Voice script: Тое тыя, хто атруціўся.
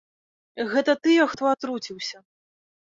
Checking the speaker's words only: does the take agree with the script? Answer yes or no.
no